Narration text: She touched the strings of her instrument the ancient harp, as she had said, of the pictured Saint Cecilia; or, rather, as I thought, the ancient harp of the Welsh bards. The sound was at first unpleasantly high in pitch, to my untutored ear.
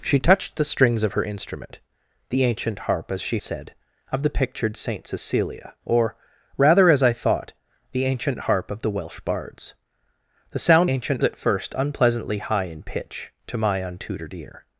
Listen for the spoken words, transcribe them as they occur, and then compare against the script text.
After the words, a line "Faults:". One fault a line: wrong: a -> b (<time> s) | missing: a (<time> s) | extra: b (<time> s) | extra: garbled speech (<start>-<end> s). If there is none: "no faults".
She touched the strings of her instrument the ancient harp, as she said, of the pictured Saint Cecilia; or, rather, as I thought, the ancient harp of the Welsh bards. The sound ancient at first unpleasantly high in pitch, to my untutored ear.
Faults:
missing: had (3.4 s)
wrong: was -> ancient (10.9 s)